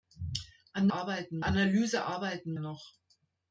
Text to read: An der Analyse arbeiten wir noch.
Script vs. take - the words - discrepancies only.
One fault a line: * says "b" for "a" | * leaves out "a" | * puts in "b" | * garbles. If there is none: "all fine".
* says "arbeiten" for "der"
* leaves out "wir"